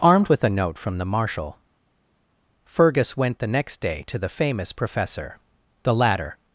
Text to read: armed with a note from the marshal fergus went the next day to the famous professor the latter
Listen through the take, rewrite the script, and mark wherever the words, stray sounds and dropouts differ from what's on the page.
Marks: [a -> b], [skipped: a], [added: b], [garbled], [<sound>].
armed with a note from the marshal fergus went the next day to the famous professor the latter